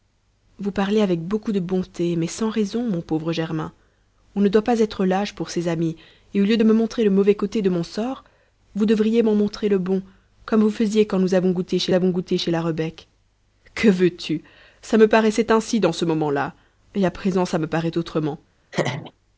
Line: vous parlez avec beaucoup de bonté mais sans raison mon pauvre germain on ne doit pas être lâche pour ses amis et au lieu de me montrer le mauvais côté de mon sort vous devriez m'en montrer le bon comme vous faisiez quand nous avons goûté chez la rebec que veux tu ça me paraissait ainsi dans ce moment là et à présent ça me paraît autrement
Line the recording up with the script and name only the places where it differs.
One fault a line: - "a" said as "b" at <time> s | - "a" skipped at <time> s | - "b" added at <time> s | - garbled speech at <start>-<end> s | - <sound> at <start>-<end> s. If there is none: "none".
- "avons goûté chez" added at 11.9 s
- laugh at 18.7-19.1 s